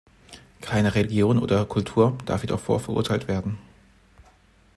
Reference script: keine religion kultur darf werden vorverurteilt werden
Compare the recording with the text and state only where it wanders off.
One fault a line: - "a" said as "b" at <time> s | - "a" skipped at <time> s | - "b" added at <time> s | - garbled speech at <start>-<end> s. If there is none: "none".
- "oder" added at 1.4 s
- "werden" said as "jedoch" at 2.4 s